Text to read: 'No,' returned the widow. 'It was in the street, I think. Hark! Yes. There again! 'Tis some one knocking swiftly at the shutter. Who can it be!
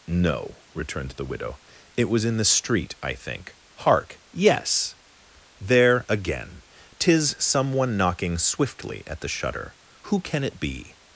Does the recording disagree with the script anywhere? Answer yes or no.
no